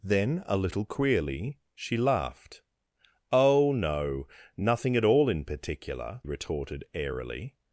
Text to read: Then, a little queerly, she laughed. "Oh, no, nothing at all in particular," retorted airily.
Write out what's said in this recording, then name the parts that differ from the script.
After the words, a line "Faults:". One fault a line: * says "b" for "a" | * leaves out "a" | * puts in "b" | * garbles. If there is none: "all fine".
Then, a little queerly, she laughed. "Oh, no, nothing at all in particular," retorted airily.
Faults:
all fine